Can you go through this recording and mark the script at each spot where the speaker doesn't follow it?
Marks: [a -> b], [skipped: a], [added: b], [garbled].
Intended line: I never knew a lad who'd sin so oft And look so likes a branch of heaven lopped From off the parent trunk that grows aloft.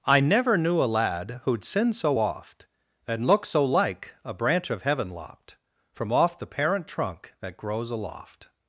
I never knew a lad who'd sin so oft And look so [likes -> like] a branch of heaven lopped From off the parent trunk that grows aloft.